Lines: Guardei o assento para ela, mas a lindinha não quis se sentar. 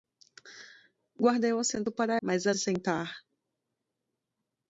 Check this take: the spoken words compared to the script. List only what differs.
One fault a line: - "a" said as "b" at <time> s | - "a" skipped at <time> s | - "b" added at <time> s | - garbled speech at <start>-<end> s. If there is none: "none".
- "ela" skipped at 2.2 s
- "lindinha não quis" skipped at 2.5 s